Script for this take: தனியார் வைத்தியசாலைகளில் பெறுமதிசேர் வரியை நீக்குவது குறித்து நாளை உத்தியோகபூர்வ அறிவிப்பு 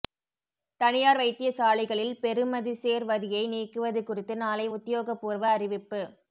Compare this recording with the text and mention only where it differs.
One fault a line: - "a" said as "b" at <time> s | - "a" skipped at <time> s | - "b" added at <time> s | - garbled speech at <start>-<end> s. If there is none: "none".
none